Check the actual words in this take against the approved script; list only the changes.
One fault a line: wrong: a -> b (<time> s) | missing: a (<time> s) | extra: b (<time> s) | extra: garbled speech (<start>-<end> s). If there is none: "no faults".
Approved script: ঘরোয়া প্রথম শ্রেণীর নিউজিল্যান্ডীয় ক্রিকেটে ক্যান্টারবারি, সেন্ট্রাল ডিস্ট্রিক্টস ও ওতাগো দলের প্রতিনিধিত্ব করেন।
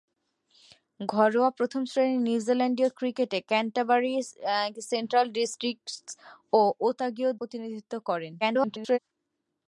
missing: দলের (7.3 s)
extra: garbled speech (8.4-9.0 s)